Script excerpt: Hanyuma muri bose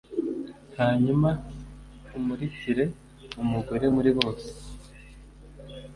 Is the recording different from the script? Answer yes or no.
yes